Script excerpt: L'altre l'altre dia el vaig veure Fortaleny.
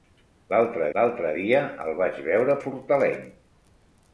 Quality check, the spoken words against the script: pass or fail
pass